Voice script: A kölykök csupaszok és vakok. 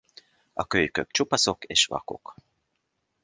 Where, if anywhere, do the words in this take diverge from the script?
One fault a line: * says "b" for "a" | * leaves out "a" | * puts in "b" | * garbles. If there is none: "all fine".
all fine